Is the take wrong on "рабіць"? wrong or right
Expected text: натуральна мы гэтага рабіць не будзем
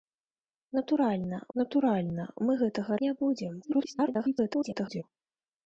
wrong